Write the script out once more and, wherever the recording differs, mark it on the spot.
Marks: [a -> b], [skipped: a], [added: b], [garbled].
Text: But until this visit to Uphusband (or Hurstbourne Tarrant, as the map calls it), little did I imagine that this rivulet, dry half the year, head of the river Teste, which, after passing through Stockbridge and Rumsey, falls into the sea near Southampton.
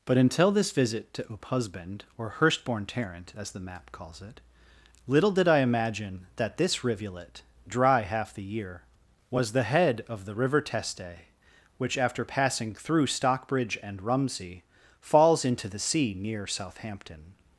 But until this visit to Uphusband (or Hurstbourne Tarrant, as the map calls it), little did I imagine that this rivulet, dry half the year, [added: was the] head of the river Teste, which, after passing through Stockbridge and Rumsey, falls into the sea near Southampton.